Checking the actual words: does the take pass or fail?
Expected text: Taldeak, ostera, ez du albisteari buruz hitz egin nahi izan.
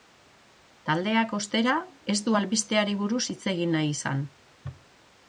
pass